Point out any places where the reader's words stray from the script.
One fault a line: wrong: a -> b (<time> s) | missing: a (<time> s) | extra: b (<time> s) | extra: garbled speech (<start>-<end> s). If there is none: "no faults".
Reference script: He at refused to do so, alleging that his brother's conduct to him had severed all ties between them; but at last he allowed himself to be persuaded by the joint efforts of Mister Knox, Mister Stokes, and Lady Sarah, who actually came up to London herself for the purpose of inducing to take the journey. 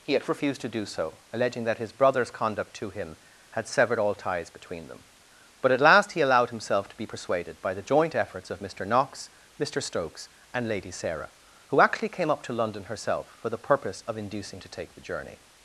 no faults